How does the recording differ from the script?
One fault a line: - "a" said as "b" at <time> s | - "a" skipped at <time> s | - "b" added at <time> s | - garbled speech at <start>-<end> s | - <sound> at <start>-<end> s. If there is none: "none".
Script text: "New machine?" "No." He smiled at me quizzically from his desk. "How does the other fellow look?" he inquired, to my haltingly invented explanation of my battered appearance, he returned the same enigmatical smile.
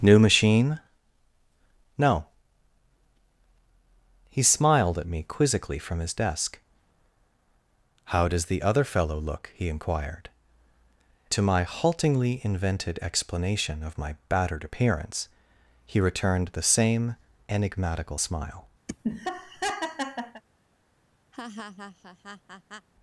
- laugh at 18.9-20.4 s
- laugh at 21.3-22.9 s